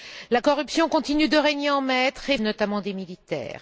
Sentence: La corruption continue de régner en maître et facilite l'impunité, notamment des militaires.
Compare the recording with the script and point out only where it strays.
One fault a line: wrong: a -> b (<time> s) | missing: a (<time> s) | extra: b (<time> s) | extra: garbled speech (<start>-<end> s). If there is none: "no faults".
missing: facilite l'impunité (2.4 s)